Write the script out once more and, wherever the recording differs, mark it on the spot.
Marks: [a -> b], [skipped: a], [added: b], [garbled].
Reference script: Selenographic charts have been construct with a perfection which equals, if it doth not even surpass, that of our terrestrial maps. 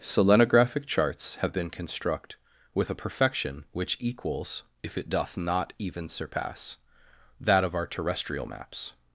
Selenographic charts have been construct with a perfection which equals, if it doth not even surpass, that of our terrestrial maps.